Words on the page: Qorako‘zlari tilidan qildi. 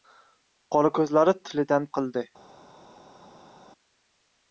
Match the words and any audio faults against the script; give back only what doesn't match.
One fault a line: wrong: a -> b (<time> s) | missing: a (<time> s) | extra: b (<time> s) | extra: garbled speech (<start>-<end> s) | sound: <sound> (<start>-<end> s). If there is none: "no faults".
no faults